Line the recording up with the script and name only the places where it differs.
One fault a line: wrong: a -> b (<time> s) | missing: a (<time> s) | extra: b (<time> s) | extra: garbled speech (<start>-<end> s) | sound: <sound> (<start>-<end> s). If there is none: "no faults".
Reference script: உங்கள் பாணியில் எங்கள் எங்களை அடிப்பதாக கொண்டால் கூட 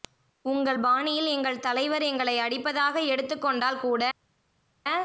extra: தலைவர் (1.6 s)
extra: எடுத்துக் (3.1 s)